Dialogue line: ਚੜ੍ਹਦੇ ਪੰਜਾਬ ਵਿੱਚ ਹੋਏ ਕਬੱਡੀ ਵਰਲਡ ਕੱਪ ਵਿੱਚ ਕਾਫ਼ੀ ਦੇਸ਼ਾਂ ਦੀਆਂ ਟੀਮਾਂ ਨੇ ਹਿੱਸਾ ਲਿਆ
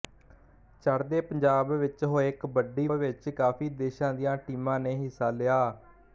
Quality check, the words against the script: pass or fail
fail